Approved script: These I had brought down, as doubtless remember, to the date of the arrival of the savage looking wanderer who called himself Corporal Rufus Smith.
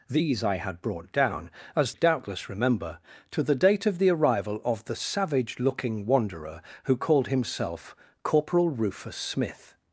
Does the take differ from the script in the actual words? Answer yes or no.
no